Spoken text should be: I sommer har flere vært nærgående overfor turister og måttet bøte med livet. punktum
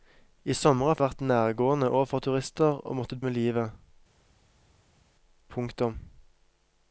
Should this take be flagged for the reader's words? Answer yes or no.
yes